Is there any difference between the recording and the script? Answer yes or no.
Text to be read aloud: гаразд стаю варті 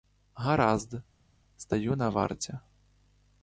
yes